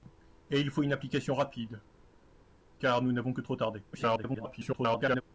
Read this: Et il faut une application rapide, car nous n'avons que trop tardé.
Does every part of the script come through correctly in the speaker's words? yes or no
no